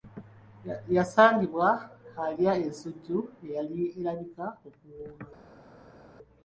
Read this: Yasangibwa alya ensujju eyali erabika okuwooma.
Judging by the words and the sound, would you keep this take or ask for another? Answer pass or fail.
pass